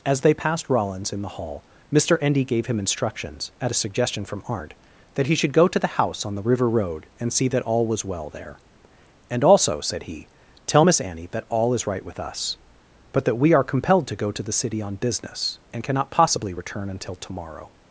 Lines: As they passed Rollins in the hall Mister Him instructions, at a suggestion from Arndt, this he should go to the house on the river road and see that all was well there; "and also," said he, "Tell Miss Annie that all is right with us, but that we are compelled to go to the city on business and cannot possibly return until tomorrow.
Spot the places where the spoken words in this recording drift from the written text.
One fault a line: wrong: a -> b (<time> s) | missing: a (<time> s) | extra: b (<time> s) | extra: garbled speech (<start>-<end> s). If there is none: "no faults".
extra: Endy gave (2.2 s)
wrong: this -> that (5.1 s)